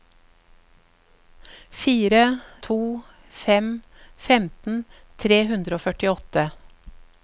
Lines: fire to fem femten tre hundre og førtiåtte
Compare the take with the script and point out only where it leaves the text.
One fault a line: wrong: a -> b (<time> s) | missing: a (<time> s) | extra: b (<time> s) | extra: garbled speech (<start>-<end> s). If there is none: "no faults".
no faults